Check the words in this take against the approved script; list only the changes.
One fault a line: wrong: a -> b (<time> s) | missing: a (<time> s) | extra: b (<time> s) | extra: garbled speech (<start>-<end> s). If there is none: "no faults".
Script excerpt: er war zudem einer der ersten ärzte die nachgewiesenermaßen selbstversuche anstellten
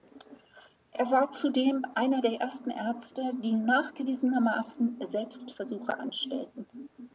no faults